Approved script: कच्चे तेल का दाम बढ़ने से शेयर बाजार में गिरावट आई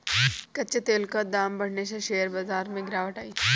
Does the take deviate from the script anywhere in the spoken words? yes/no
no